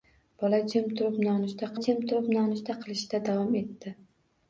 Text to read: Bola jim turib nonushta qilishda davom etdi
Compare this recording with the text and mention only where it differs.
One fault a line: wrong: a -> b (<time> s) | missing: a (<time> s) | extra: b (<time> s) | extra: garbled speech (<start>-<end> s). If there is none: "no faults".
extra: jim turib nonushta (1.8 s)